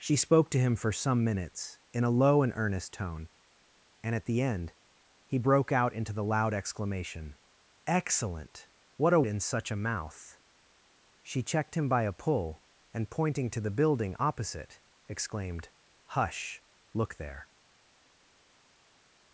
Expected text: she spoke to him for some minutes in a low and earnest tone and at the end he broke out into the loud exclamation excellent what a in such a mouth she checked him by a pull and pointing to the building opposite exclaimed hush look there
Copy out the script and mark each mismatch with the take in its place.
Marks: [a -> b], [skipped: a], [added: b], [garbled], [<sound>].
she spoke to him for some minutes in a low and earnest tone and at the end he broke out into the loud exclamation excellent what a in such a mouth she checked him by a pull and pointing to the building opposite exclaimed hush look there